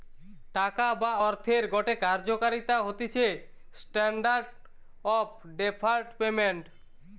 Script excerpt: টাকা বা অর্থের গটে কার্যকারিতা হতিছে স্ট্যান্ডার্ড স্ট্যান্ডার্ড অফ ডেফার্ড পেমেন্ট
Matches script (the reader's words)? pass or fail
fail